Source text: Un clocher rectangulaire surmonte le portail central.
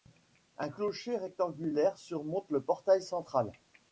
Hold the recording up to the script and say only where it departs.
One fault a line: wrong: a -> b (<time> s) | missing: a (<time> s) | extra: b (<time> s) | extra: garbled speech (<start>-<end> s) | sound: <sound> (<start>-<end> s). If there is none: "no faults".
no faults